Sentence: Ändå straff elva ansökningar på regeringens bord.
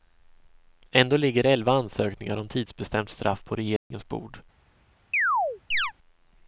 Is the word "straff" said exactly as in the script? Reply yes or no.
no